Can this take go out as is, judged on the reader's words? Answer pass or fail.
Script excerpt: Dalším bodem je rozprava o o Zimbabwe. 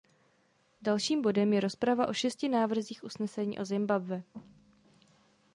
fail